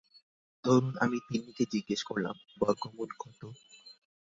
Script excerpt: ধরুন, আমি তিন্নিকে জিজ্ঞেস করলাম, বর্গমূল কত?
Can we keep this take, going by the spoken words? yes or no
yes